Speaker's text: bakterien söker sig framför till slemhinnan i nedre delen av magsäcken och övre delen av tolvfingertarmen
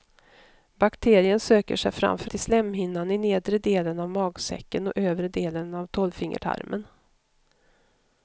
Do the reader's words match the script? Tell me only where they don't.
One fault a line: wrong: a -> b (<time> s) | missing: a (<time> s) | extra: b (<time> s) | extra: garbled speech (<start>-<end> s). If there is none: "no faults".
no faults